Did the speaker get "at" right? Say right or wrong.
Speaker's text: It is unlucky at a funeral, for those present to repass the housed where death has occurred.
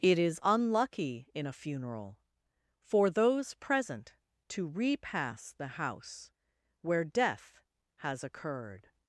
wrong